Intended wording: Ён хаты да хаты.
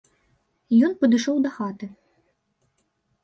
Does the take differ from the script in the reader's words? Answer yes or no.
yes